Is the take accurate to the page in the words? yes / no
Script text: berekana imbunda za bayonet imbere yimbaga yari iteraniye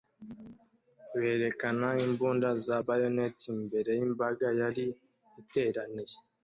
yes